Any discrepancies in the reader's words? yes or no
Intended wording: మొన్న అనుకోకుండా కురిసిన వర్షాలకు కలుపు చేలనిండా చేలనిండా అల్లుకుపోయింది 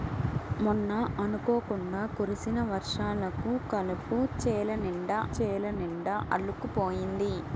no